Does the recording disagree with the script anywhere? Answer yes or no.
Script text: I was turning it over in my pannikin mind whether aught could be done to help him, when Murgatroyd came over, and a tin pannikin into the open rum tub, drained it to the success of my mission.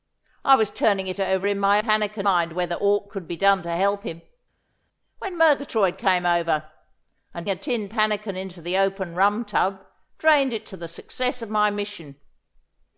no